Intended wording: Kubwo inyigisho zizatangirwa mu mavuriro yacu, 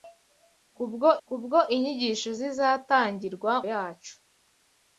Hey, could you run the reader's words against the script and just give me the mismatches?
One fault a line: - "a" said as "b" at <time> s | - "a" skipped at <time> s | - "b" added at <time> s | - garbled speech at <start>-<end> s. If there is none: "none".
- "kubwo" added at 1.3 s
- "mu mavuriro" skipped at 3.5 s